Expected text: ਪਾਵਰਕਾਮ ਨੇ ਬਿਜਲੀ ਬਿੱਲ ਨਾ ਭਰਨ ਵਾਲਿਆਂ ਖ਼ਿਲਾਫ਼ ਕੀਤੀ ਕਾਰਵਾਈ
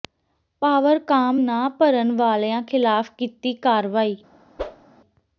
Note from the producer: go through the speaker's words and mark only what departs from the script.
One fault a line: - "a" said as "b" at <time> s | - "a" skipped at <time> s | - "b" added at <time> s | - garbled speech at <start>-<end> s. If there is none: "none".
- "ਨੇ ਬਿਜਲੀ ਬਿੱਲ" skipped at 1.4 s